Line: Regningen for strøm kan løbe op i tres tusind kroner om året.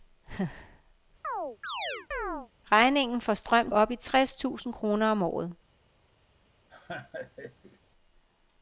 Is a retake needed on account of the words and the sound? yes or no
yes